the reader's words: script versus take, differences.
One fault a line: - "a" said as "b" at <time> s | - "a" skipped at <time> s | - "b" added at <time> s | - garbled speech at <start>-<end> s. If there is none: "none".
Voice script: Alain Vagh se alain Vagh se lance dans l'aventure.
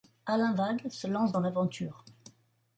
- "alain Vagh se" skipped at 1.1 s